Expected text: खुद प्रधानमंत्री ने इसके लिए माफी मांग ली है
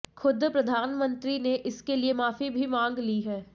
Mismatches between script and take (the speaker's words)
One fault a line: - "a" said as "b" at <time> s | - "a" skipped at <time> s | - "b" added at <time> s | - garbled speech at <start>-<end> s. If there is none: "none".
- "भी" added at 2.5 s